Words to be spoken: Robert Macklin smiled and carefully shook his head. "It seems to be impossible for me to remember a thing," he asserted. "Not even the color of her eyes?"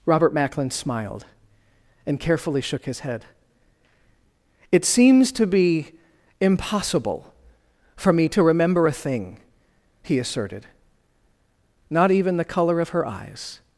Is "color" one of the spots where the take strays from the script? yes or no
no